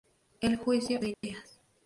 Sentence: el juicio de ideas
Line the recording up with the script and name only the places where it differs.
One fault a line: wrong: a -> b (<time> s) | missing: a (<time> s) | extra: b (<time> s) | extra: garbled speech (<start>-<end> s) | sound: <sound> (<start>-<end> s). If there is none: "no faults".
sound: dropout (1.1-1.2 s)